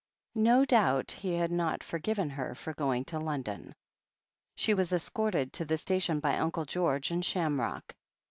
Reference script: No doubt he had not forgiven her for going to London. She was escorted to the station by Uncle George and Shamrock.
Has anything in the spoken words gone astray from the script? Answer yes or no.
no